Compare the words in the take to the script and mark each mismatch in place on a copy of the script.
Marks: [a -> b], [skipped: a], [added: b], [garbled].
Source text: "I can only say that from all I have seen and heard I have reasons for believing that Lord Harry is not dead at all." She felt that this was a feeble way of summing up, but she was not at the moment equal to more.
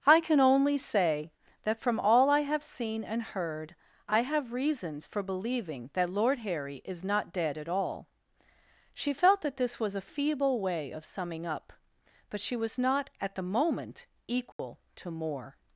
"I can only say that from all I have seen and heard I have reasons for believing that Lord Harry is not dead at all." She felt that this was a feeble way of summing up, but she was not at the moment equal to more.